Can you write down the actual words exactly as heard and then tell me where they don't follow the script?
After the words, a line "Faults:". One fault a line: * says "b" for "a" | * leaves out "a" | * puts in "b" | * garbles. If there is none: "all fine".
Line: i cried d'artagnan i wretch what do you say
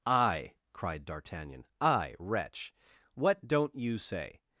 i cried d'artagnan i wretch what don't you say
Faults:
* says "don't" for "do"